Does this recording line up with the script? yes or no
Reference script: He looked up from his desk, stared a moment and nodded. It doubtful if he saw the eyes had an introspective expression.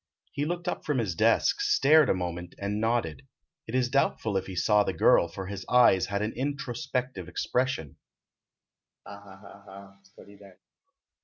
no